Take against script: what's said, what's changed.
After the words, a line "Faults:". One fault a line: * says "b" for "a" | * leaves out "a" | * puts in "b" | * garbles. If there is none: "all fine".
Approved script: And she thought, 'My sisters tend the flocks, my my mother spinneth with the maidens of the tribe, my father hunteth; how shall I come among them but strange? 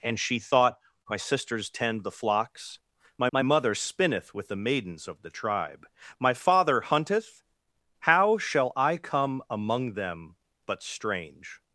And she thought, 'My sisters tend the flocks, my my mother spinneth with the maidens of the tribe, my father hunteth; how shall I come among them but strange?
Faults:
all fine